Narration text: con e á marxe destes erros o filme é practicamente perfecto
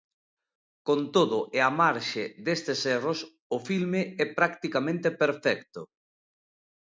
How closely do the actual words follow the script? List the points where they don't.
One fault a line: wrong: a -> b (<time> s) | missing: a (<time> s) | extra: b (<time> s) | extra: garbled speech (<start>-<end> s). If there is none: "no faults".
extra: todo (1.1 s)